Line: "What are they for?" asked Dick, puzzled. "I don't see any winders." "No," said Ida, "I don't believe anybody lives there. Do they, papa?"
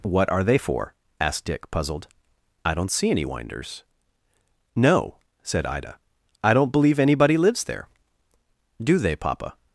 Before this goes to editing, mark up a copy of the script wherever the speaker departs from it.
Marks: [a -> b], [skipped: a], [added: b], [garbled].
"What are they for?" asked Dick, puzzled. "I don't see any winders." "No," said Ida, "I don't believe anybody lives there. Do they, papa?"